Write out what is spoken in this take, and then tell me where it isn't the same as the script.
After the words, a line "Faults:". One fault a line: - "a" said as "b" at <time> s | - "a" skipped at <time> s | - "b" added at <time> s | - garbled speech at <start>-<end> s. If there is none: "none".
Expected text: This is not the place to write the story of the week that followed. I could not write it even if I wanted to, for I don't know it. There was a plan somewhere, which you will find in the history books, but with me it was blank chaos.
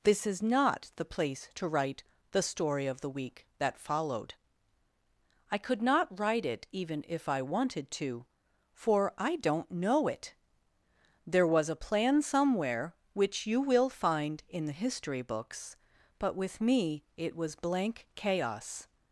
This is not the place to write the story of the week that followed. I could not write it even if I wanted to, for I don't know it. There was a plan somewhere, which you will find in the history books, but with me it was blank chaos.
Faults:
none